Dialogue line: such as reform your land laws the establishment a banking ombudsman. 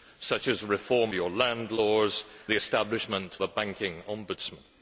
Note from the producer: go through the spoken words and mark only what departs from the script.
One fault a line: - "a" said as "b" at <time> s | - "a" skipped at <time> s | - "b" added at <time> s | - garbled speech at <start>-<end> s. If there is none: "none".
none